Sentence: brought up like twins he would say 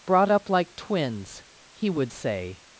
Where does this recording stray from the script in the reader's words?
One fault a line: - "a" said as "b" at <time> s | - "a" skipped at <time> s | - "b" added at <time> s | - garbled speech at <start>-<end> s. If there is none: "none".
none